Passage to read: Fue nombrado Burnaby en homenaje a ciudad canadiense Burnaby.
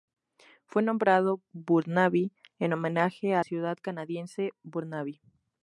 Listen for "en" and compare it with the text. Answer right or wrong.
right